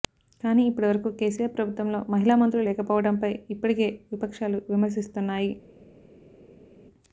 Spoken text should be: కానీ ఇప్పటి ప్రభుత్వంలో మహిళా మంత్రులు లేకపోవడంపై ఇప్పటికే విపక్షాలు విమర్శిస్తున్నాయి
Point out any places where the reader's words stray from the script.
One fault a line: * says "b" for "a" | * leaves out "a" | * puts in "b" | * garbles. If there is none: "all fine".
* puts in "వరకు కేసీఆర్"